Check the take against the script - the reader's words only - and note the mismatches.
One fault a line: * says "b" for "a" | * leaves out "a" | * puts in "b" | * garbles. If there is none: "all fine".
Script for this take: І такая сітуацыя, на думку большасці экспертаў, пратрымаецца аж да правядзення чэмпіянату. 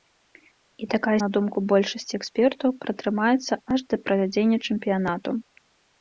* leaves out "сітуацыя"